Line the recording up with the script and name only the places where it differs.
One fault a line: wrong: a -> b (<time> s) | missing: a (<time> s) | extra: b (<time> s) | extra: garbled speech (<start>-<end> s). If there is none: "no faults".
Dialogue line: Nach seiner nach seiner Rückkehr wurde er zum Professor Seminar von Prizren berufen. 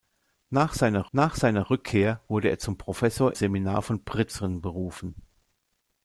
no faults